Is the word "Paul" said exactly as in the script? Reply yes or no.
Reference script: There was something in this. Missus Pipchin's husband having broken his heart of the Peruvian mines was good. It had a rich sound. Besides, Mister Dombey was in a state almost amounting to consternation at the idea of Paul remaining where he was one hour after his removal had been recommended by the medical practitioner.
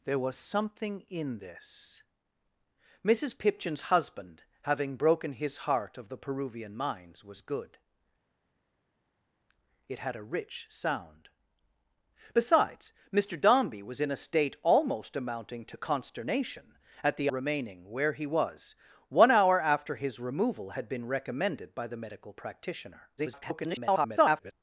no